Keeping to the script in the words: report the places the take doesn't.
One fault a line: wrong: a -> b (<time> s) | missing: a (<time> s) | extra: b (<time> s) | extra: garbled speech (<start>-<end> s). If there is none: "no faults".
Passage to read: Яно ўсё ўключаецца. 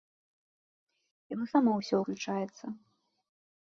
extra: само (1.5 s)